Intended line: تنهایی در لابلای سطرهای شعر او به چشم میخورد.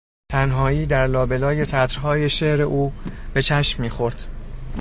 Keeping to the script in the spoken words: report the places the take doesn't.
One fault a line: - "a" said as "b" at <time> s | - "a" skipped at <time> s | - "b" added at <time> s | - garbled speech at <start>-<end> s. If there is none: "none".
none